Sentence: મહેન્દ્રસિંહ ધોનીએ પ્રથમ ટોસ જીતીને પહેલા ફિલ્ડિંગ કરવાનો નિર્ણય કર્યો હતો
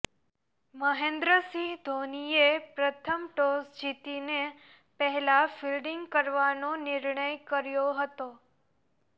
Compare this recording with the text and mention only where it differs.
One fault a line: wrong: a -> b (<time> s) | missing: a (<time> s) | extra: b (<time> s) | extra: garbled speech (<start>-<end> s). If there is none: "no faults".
no faults